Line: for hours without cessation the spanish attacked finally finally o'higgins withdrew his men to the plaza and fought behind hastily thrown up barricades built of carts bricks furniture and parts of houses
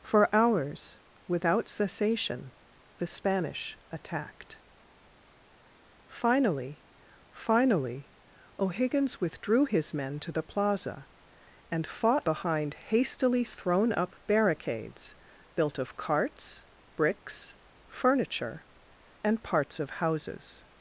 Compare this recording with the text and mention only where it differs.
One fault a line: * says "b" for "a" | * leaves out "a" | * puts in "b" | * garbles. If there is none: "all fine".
all fine